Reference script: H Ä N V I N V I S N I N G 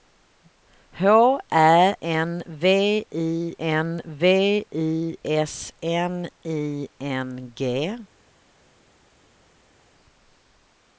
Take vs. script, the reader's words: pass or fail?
pass